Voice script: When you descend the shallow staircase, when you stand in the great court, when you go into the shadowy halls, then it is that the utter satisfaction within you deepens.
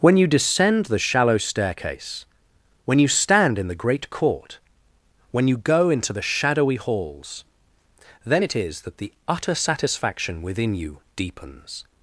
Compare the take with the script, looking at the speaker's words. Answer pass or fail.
pass